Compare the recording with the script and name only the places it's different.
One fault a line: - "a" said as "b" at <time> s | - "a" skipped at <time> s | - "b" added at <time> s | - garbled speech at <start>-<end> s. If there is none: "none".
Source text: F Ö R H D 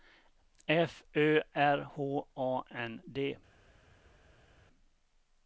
- "A N" added at 2.3 s